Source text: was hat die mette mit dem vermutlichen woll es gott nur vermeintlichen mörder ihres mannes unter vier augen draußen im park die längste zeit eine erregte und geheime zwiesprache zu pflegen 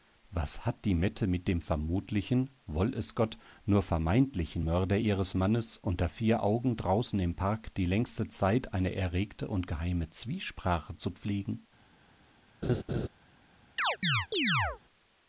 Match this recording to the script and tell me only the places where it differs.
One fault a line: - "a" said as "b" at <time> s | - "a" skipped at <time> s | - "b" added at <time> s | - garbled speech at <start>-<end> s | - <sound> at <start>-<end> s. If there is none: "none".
- laugh at 12.6-13.1 s
- chirp at 13.8-14.8 s